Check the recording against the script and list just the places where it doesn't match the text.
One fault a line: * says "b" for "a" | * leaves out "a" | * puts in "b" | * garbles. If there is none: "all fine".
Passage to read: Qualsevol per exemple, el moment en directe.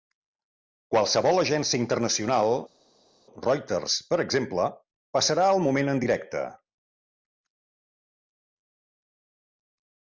* puts in "agència internacional Reuters"
* puts in "passarà"